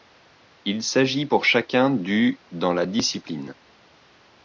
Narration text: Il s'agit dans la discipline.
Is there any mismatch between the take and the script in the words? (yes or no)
yes